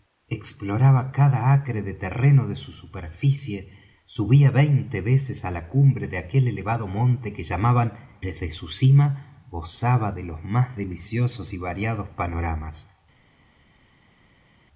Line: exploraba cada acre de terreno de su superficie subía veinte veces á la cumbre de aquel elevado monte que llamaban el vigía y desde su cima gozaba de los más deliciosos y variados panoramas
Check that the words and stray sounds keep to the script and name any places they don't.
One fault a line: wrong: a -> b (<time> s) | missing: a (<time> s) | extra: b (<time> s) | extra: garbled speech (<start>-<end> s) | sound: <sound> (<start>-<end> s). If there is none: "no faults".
missing: el vigía y (7.9 s)